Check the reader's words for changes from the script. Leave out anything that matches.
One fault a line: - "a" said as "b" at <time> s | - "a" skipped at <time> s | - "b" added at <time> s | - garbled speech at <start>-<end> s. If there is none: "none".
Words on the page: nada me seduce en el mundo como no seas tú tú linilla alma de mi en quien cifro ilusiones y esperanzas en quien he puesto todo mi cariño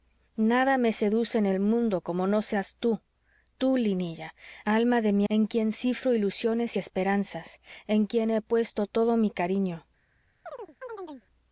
none